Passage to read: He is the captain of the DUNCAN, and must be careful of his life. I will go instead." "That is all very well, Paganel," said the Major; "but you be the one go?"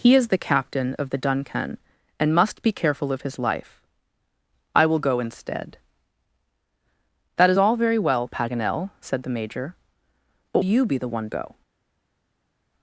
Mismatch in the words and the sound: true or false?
false